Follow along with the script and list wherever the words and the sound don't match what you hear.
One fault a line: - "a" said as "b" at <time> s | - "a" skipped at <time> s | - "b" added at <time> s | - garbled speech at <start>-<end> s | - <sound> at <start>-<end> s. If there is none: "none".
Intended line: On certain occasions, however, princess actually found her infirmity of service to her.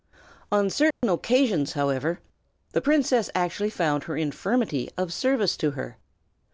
- dropout at 0.9-1.0 s
- "the" added at 2.7 s